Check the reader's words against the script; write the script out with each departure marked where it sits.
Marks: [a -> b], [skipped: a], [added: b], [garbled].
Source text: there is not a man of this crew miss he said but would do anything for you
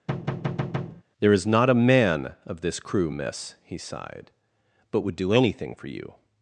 there is not a man of this crew miss he [said -> sighed] but would do anything for you